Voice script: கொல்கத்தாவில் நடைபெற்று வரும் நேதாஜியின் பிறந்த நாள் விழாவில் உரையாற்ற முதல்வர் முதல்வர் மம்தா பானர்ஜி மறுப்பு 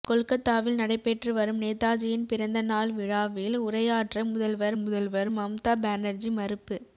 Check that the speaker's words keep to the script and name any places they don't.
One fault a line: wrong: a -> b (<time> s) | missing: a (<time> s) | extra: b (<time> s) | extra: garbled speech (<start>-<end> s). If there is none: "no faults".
no faults